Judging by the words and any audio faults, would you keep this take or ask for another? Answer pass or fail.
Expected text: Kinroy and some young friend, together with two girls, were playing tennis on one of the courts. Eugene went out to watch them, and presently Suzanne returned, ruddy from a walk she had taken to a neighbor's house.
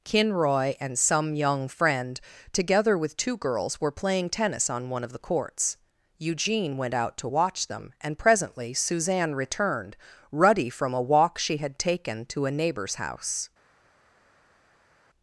pass